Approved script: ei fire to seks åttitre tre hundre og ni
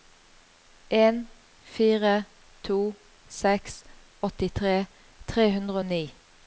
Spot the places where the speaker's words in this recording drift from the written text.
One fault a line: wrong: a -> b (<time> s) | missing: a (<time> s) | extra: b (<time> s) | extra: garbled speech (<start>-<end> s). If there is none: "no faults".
wrong: ei -> en (0.9 s)